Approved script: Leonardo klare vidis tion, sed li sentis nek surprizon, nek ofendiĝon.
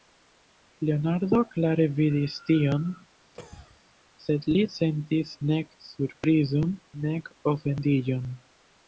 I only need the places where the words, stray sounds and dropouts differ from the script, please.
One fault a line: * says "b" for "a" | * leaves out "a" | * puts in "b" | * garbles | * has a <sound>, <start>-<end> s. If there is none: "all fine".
* has a cough, 3.3-3.8 s